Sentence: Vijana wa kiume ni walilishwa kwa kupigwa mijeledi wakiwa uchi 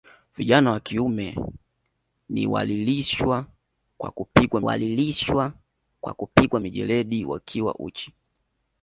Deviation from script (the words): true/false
true